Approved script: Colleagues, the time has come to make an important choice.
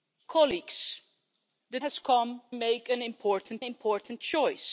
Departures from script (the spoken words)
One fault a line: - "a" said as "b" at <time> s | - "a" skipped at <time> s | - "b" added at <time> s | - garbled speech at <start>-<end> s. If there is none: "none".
- "time" skipped at 1.8 s
- "to" skipped at 2.4 s
- "important" added at 3.6 s